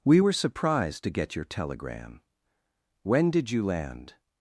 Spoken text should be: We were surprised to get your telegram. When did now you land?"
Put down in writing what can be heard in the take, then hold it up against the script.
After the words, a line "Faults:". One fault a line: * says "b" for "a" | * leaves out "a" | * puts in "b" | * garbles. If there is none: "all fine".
We were surprised to get your telegram. When did you land?"
Faults:
* leaves out "now"